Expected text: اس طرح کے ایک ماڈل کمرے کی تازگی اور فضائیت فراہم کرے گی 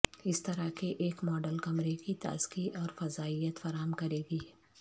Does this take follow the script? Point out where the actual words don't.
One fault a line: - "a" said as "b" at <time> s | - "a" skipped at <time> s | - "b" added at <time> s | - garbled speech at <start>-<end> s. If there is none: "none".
none